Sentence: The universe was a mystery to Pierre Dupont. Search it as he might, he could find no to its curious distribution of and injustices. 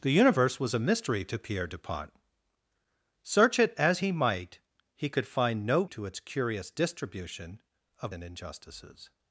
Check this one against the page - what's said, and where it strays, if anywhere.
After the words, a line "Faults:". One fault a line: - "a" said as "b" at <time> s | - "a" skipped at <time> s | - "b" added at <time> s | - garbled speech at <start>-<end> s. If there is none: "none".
The universe was a mystery to Pierre Dupont. Search it as he might, he could find no to its curious distribution of and injustices.
Faults:
none